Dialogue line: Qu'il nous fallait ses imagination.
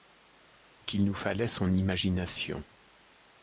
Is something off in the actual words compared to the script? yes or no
yes